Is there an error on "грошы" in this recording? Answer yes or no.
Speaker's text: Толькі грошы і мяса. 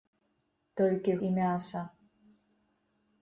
yes